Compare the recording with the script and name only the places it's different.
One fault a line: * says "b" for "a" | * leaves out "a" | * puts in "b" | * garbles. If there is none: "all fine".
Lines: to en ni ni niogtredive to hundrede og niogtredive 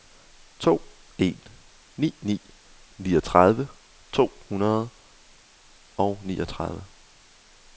all fine